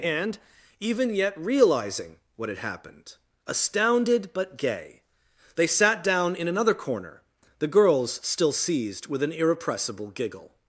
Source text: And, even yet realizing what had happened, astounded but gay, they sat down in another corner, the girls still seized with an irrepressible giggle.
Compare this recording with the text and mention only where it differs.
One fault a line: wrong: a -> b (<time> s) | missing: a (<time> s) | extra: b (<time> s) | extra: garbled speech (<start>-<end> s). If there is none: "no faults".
no faults